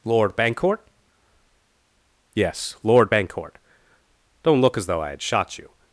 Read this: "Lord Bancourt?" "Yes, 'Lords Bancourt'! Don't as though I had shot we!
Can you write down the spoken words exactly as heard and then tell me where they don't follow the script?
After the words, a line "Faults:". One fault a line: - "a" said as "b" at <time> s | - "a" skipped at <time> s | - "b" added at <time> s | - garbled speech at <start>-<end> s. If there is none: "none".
"Lord Bancourt?" "Yes, 'Lord Bancourt'! Don't look as though I had shot you!
Faults:
- "Lords" said as "Lord" at 2.8 s
- "look" added at 4.6 s
- "we" said as "you" at 5.6 s